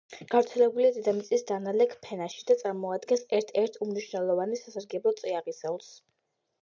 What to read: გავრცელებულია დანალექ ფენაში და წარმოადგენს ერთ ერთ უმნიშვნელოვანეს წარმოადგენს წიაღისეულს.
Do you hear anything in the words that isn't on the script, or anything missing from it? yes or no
yes